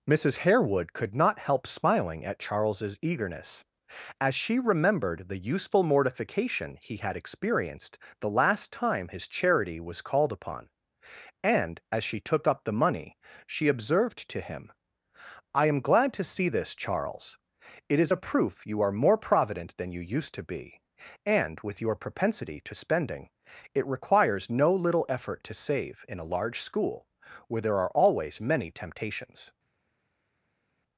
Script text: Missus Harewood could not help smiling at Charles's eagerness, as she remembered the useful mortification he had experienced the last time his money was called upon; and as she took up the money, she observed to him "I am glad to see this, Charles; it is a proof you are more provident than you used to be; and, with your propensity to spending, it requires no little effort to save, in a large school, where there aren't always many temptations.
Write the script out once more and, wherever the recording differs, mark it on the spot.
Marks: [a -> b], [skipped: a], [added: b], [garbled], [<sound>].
Missus Harewood could not help smiling at Charles's eagerness, as she remembered the useful mortification he had experienced the last time his [money -> charity] was called upon; and as she took up the money, she observed to him "I am glad to see this, Charles; it is a proof you are more provident than you used to be; and, with your propensity to spending, it requires no little effort to save, in a large school, where there [aren't -> are] always many temptations.